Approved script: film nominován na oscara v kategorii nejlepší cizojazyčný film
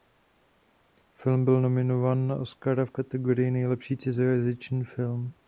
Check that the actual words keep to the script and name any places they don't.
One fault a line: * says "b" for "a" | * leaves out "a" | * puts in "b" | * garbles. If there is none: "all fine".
* puts in "byl"